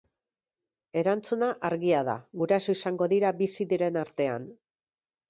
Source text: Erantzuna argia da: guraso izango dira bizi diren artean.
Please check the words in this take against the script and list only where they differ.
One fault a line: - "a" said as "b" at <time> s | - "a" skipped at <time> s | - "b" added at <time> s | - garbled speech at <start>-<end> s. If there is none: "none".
none